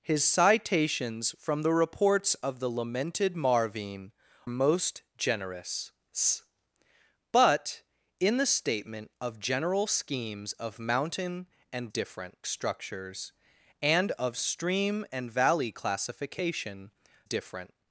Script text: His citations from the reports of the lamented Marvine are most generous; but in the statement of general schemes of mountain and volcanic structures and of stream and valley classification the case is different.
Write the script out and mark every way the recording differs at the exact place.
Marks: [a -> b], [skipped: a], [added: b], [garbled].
His citations from the reports of the lamented Marvine [skipped: are] most generous; but in the statement of general schemes of mountain and [volcanic -> different] structures and of stream and valley classification [skipped: the case is] different.